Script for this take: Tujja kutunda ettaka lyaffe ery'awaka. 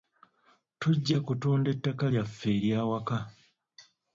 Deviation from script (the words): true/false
false